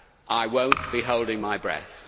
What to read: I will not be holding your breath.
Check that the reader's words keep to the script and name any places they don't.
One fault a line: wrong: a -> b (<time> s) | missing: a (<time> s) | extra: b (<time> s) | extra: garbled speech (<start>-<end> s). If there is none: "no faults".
wrong: your -> my (1.4 s)